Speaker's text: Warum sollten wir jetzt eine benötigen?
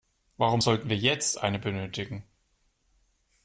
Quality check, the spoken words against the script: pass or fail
pass